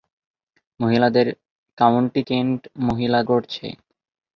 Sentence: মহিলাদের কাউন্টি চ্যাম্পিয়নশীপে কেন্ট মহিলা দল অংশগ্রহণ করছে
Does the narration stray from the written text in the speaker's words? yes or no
yes